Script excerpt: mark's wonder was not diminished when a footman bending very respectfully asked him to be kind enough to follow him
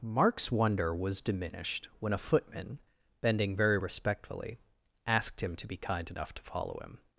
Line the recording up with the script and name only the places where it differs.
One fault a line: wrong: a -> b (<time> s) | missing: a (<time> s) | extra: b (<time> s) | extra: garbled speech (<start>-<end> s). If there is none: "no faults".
missing: not (1.2 s)